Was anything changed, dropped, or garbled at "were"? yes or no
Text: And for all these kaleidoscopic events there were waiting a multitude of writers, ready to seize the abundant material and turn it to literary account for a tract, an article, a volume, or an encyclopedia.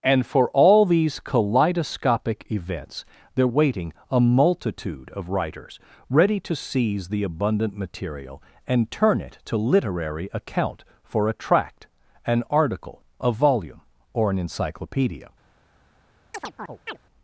yes